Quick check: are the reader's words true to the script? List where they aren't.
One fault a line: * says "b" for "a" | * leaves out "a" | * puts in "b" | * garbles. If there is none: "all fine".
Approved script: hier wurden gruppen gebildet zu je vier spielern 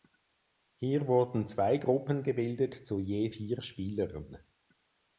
* puts in "zwei"